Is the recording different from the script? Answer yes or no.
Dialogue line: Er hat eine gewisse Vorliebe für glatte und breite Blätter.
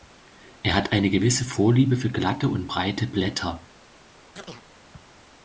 no